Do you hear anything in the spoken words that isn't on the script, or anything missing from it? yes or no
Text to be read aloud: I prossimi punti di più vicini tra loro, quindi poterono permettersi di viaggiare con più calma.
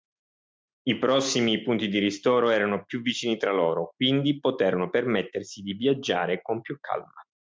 yes